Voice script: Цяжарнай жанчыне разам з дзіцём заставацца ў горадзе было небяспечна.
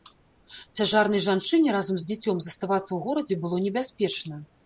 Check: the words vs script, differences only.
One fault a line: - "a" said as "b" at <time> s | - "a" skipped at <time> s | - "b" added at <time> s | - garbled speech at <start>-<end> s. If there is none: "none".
none